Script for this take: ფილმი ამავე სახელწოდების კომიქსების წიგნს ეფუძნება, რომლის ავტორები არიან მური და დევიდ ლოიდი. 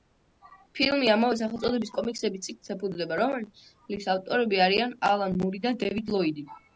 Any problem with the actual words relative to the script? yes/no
yes